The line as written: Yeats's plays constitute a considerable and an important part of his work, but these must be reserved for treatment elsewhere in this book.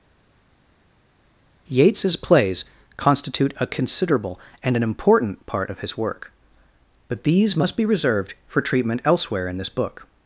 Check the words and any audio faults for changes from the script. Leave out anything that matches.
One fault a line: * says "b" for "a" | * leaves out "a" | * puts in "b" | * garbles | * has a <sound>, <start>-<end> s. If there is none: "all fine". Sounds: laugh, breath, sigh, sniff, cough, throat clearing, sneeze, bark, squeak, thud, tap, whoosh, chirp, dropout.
all fine